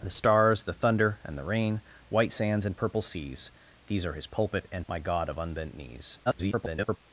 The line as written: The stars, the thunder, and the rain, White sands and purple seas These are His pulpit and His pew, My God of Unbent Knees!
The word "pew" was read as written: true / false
false